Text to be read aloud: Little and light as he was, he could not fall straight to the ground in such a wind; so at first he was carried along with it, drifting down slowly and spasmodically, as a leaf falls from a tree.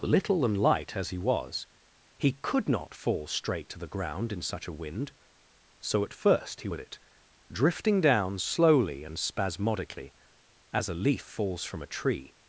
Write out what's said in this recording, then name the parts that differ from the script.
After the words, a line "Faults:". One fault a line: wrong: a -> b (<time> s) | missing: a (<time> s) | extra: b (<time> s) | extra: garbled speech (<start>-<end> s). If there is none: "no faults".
Little and light as he was, he could not fall straight to the ground in such a wind; so at first he with it, drifting down slowly and spasmodically, as a leaf falls from a tree.
Faults:
missing: was carried along (6.7 s)